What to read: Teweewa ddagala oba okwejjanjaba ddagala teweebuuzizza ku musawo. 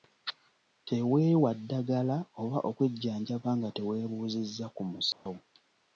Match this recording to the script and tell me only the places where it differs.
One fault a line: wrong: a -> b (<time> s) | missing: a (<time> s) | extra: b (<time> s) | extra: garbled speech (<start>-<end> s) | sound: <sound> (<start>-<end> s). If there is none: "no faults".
wrong: ddagala -> nga (3.6 s)
sound: dropout (5.1-5.3 s)